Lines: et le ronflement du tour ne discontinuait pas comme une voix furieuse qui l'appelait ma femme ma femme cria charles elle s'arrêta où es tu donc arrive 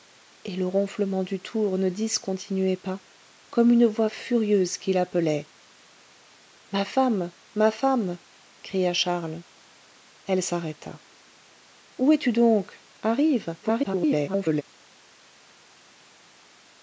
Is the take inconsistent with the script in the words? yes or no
yes